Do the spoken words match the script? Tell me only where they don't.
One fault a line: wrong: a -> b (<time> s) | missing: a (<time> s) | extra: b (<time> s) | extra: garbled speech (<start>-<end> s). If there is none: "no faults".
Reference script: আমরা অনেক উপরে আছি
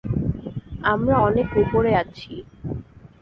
no faults